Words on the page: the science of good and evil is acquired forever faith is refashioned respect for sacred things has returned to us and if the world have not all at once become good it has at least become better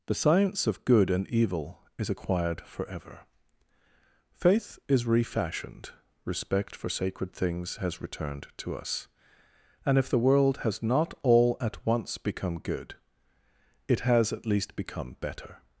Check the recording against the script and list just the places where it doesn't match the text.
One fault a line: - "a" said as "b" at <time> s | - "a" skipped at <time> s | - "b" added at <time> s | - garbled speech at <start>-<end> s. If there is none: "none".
- "have" said as "has" at 10.6 s